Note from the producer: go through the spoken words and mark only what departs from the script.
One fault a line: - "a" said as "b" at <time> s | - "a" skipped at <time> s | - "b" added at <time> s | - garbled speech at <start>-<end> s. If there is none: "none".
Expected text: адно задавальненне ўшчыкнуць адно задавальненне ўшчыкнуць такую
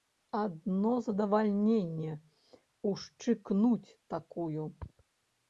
- "адно задавальненне ўшчыкнуць" skipped at 3.9 s